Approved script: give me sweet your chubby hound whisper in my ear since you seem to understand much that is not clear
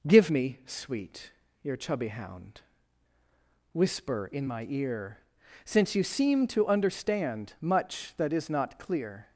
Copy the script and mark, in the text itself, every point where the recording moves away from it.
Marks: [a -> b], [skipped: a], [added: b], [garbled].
give me sweet your chubby hound whisper in my ear since you seem to understand much that is not clear